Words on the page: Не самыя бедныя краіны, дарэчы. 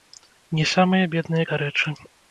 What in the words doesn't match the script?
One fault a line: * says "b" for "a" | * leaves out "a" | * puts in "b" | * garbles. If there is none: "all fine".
* leaves out "краіны"